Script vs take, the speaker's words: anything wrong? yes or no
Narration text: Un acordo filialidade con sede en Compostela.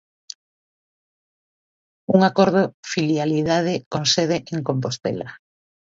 no